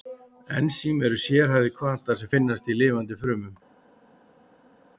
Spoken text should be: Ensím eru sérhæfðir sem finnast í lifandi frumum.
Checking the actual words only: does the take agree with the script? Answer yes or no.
no